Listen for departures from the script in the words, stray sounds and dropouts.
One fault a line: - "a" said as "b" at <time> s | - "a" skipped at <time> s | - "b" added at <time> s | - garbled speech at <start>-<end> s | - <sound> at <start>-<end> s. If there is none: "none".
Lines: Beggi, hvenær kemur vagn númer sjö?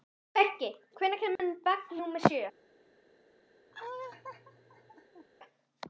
- dropout at 1.4-1.4 s
- laugh at 3.7-5.3 s